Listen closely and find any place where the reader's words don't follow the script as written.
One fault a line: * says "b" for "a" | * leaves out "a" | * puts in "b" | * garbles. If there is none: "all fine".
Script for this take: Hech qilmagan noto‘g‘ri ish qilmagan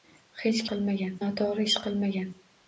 all fine